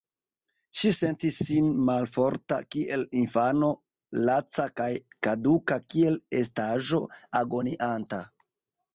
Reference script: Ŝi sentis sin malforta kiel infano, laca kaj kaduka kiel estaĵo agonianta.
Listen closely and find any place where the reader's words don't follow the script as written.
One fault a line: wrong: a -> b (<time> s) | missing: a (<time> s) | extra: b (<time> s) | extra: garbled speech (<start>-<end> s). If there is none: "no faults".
no faults